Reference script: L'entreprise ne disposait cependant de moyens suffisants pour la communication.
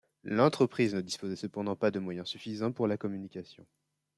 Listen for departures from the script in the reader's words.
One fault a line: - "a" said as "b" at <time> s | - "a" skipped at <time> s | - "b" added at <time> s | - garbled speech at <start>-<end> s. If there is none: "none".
- "pas" added at 1.8 s